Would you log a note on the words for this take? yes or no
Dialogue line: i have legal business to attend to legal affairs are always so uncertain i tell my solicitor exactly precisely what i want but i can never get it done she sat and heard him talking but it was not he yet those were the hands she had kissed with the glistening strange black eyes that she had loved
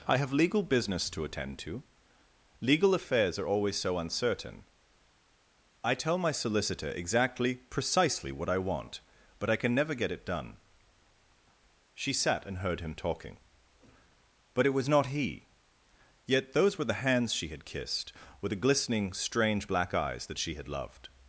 no